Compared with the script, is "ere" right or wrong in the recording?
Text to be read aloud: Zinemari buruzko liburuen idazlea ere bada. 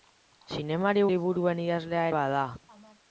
wrong